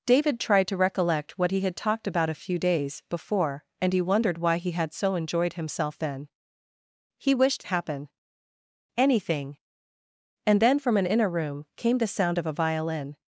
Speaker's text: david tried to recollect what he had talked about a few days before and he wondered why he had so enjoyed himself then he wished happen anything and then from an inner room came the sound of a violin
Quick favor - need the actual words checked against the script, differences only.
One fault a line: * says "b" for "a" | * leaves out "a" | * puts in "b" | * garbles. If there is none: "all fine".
all fine